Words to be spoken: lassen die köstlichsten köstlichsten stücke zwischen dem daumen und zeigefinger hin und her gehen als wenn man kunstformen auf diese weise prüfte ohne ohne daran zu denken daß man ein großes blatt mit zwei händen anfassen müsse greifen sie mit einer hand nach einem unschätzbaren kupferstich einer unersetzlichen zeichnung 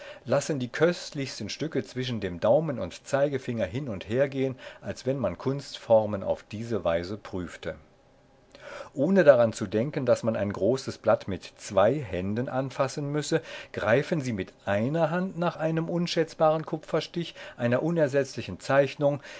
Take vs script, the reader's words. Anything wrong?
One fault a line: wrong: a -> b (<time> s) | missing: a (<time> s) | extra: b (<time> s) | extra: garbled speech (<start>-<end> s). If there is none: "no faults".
missing: köstlichsten (1.5 s)
missing: ohne (9.2 s)